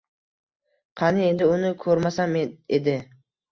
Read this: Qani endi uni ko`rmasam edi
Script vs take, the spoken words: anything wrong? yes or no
no